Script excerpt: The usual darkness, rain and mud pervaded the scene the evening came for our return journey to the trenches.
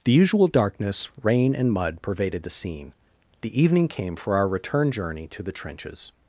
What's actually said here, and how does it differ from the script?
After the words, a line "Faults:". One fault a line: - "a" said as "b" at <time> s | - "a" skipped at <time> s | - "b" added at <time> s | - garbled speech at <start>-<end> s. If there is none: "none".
The usual darkness, rain and mud pervaded the scene the evening came for our return journey to the trenches.
Faults:
none